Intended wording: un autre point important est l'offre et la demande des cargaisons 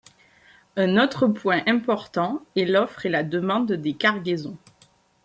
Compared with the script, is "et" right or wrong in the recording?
right